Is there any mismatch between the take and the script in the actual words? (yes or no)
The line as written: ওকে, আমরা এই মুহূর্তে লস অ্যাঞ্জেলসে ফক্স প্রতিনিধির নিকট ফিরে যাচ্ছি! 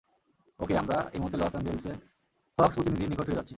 no